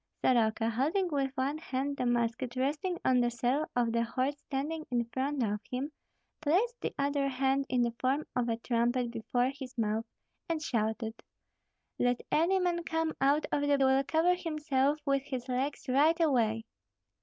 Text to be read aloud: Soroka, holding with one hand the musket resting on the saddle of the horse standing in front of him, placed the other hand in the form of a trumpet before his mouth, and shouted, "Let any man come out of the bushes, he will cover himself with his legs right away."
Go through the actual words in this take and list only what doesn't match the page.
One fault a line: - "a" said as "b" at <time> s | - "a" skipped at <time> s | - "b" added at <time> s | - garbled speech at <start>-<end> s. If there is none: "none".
- "bushes he" skipped at 13.8 s